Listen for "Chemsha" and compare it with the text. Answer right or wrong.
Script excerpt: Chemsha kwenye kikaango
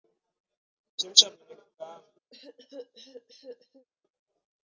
right